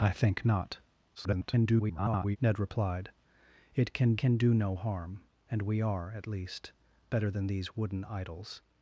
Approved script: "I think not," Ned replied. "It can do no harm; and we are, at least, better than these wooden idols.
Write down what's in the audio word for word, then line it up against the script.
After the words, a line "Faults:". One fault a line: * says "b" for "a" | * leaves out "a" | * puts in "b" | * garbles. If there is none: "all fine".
"I think not," [garbled] Ned replied. "It can can do no harm; and we are, at least, better than these wooden idols.
Faults:
* garbles
* puts in "can"